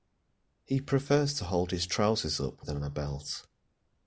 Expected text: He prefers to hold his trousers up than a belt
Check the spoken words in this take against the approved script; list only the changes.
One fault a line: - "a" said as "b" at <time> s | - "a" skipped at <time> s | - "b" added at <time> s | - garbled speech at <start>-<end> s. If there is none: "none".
none